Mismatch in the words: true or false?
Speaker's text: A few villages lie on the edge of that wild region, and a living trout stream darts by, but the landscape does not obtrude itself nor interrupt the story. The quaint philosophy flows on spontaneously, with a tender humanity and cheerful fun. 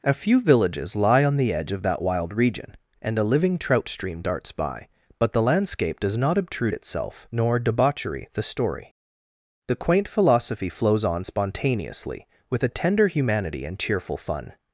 true